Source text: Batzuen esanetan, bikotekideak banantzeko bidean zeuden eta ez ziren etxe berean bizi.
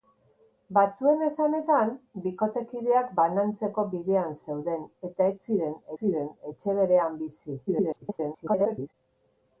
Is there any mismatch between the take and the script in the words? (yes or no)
yes